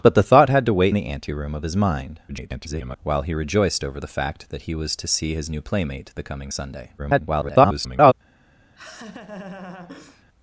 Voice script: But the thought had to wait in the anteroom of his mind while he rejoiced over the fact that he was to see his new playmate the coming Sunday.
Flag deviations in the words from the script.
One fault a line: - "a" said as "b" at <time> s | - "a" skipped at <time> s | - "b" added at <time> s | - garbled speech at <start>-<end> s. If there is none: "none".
- "in" skipped at 0.9 s
- garbled speech at 2.3-3.0 s
- garbled speech at 7.0-8.1 s